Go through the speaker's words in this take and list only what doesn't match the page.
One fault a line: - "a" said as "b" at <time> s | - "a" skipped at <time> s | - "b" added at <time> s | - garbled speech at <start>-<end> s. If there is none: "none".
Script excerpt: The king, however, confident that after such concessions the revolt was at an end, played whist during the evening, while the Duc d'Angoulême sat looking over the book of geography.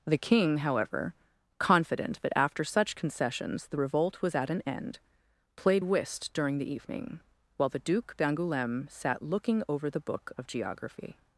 none